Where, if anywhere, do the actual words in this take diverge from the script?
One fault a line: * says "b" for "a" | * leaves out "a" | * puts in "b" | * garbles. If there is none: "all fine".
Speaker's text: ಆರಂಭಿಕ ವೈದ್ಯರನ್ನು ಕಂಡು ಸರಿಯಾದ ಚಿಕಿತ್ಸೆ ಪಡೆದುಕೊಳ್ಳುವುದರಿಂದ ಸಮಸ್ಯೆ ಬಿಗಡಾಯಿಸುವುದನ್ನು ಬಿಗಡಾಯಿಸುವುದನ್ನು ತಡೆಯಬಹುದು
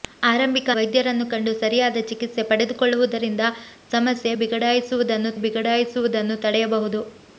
all fine